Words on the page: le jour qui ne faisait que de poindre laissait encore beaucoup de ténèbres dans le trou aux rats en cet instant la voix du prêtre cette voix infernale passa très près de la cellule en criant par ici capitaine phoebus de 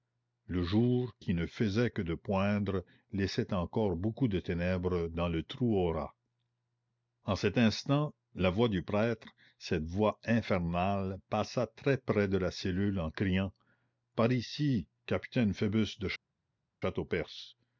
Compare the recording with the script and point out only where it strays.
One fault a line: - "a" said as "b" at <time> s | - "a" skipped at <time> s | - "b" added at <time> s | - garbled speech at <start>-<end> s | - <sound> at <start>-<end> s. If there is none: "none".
none